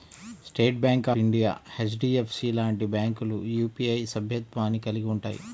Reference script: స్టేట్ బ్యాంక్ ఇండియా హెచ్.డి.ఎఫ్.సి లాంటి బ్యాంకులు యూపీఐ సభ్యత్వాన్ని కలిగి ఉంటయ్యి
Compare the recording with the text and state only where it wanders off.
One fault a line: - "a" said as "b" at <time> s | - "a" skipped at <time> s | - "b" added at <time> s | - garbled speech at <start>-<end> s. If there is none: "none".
none